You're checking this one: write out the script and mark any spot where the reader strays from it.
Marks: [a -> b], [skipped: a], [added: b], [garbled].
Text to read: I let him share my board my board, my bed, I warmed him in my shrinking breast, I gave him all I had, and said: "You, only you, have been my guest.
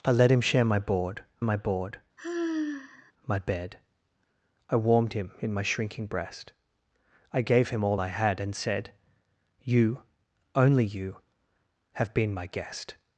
I let him share my board my board, my bed, I warmed him in my shrinking breast, I gave him all I had, and said: "You, only you, have been my guest.